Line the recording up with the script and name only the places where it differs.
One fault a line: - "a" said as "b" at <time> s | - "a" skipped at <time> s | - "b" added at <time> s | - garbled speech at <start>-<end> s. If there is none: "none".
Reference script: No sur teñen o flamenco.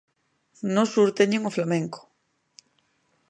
none